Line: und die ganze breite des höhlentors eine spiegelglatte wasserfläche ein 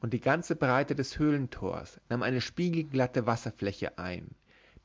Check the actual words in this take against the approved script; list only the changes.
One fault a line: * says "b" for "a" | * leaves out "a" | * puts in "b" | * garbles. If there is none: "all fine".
* puts in "nahm"